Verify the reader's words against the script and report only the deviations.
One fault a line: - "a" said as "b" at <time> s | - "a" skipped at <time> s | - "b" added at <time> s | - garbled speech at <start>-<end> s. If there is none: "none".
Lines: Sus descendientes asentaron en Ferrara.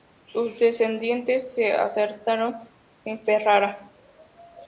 - "se" added at 1.5 s